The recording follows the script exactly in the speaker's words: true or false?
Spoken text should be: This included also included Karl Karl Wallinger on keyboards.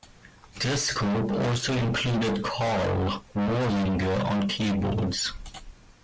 false